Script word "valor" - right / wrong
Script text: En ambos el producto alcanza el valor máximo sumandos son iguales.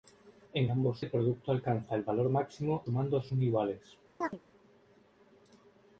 right